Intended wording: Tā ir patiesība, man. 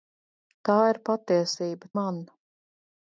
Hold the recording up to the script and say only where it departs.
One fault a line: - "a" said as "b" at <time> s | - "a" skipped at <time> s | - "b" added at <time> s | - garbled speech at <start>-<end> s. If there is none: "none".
none